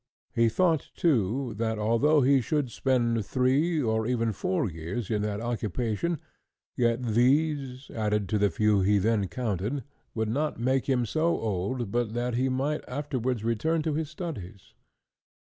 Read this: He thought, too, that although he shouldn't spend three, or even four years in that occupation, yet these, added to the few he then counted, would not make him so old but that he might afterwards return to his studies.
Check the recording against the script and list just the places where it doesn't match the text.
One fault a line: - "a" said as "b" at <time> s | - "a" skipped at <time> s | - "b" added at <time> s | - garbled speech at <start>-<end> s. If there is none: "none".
- "shouldn't" said as "should" at 2.4 s